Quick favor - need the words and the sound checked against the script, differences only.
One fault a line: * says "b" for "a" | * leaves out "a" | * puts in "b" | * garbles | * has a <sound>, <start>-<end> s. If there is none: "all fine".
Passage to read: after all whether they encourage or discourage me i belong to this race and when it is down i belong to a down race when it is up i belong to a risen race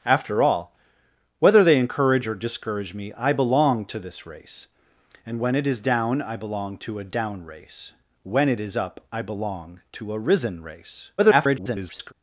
* garbles